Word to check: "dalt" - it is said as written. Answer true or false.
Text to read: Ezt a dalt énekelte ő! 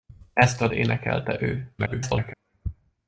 false